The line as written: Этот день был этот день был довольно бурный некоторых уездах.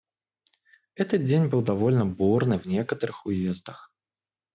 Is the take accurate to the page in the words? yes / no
no